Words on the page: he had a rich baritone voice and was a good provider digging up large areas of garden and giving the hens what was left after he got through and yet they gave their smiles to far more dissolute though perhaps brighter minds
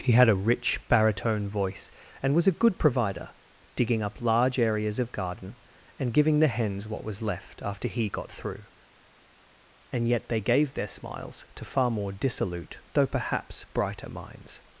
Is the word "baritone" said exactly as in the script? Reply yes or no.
yes